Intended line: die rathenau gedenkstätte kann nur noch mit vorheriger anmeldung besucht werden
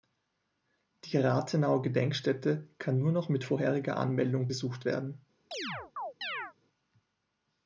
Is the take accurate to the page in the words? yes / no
yes